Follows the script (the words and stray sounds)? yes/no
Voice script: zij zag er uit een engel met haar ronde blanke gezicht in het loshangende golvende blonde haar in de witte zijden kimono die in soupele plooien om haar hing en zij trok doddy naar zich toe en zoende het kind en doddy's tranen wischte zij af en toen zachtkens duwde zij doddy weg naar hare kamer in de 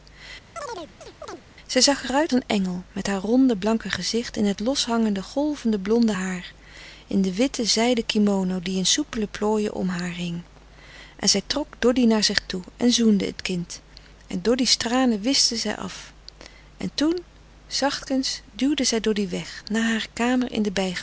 no